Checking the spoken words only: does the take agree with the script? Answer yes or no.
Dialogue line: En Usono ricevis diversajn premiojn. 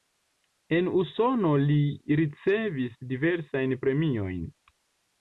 no